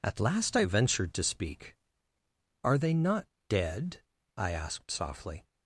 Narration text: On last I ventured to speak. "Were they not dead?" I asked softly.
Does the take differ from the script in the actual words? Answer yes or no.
yes